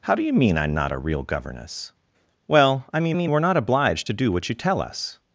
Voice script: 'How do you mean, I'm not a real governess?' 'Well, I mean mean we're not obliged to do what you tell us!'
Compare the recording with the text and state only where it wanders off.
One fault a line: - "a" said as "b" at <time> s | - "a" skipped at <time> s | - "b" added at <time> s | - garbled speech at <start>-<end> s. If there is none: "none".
none